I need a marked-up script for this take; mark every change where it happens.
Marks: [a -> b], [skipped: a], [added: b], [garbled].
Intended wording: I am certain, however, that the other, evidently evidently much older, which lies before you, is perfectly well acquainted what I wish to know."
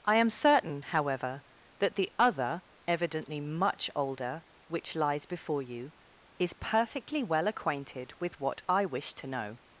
I am certain, however, that the other, evidently [skipped: evidently] much older, which lies before you, is perfectly well acquainted [added: with] what I wish to know."